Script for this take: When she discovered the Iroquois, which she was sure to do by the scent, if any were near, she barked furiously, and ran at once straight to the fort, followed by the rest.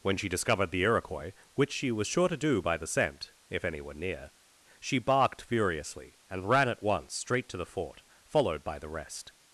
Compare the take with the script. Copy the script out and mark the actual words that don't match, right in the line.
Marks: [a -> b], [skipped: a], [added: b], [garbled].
When she discovered the Iroquois, which she was sure to do by the scent, if any were near, she barked furiously, and ran at once straight to the fort, followed by the rest.